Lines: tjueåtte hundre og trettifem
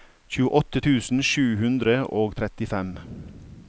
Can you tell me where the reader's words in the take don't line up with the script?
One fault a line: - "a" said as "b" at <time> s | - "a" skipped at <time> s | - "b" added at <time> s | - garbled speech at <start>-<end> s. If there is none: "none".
- "tusen sju" added at 0.8 s